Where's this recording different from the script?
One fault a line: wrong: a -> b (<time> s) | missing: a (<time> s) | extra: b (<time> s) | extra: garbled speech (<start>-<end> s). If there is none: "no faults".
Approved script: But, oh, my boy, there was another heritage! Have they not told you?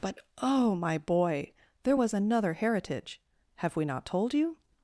wrong: they -> we (3.8 s)